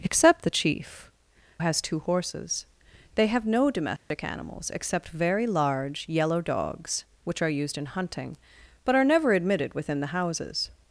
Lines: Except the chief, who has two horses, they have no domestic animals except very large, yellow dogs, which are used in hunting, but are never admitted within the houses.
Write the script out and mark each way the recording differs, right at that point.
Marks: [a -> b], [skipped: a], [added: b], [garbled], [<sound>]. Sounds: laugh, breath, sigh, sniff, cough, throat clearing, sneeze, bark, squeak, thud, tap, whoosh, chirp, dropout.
Except the chief, [skipped: who] has two horses, they have no domestic [dropout] animals except very large, yellow dogs, which are used in hunting, but are never admitted within the houses.